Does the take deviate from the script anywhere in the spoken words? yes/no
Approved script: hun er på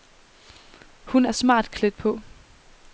yes